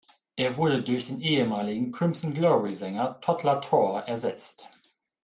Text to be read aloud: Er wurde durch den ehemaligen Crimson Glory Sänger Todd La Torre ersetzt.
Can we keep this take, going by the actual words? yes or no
yes